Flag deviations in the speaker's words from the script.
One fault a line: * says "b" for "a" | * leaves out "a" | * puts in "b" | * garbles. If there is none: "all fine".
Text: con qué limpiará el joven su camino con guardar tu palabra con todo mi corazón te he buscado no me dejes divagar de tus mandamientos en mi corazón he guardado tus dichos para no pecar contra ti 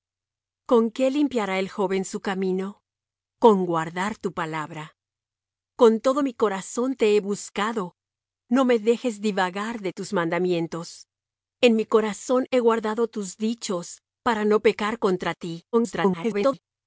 * garbles